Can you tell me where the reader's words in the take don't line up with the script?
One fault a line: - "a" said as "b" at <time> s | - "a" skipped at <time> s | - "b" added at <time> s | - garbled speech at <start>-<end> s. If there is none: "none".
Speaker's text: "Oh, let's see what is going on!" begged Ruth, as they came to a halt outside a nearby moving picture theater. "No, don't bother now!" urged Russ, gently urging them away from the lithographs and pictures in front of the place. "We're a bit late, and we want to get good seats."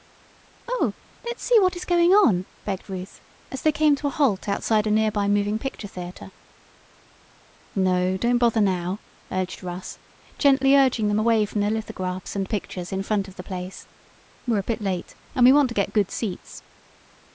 none